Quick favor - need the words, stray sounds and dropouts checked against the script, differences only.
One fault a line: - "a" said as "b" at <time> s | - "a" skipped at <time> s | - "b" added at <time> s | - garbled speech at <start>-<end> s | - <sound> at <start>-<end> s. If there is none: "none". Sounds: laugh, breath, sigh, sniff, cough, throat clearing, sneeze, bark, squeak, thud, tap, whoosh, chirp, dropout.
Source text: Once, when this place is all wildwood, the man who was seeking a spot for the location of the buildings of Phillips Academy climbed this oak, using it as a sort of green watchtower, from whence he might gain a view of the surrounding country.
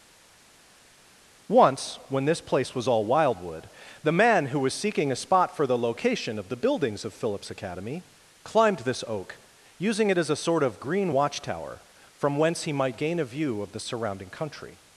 - "is" said as "was" at 2.7 s